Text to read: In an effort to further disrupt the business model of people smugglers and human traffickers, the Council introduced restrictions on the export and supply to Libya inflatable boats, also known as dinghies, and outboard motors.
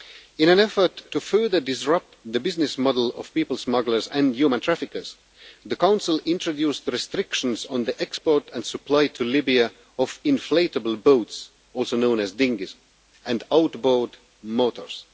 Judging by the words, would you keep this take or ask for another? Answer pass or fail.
fail